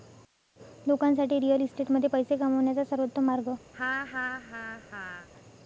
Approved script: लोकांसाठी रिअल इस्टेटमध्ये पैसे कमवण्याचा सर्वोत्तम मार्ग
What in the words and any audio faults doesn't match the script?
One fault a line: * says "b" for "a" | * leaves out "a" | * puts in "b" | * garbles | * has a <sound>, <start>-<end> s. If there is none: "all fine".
* has a laugh, 3.7-5.3 s